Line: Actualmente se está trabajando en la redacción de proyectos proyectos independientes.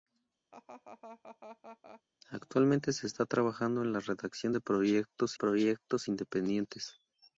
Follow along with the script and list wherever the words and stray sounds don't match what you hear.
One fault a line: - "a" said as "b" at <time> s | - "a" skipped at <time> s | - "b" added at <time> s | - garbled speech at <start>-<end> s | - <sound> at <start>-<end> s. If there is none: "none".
- laugh at 0.5-2.0 s